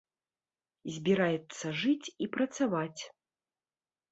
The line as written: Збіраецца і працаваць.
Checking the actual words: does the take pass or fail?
fail